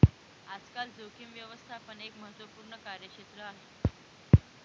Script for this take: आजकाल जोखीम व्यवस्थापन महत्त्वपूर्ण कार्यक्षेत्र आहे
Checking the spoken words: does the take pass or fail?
fail